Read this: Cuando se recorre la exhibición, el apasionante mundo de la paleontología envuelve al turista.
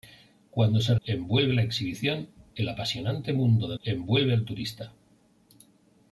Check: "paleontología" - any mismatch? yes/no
yes